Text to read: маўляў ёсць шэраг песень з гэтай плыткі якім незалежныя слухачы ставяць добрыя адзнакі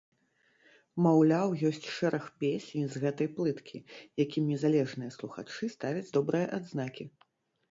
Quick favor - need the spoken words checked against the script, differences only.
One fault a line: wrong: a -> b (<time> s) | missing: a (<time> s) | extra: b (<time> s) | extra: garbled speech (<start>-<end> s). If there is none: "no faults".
no faults